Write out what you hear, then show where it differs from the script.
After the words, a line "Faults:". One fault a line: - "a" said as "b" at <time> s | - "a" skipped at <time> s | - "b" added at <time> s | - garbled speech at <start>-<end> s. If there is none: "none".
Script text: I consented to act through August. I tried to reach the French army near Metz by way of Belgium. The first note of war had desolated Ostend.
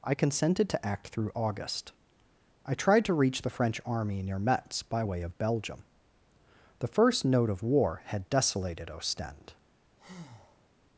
I consented to act through August. I tried to reach the French army near Metz by way of Belgium. The first note of war had desolated Ostend.
Faults:
none